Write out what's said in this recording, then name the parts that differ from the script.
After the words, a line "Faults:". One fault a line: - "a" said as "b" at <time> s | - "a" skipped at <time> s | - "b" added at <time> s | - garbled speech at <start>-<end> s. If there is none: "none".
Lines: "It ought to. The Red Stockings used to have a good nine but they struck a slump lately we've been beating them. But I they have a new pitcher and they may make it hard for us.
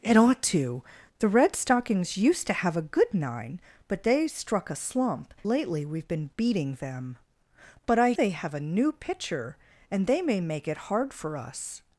"It ought to. The Red Stockings used to have a good nine but they struck a slump lately we've been beating them. But I they have a new pitcher and they may make it hard for us.
Faults:
none